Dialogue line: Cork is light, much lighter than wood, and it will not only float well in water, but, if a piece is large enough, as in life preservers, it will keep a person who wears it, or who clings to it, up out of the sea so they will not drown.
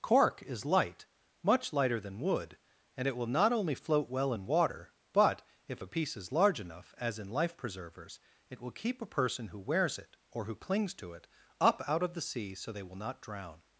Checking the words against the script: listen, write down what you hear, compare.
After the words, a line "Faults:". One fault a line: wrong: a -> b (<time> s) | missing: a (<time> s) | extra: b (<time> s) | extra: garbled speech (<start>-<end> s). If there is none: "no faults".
Cork is light, much lighter than wood, and it will not only float well in water, but, if a piece is large enough, as in life preservers, it will keep a person who wears it, or who clings to it, up out of the sea so they will not drown.
Faults:
no faults